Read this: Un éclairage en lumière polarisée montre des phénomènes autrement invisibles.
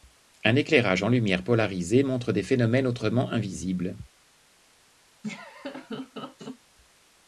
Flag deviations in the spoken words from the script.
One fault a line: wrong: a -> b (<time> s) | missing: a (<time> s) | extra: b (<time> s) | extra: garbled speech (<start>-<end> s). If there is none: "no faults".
no faults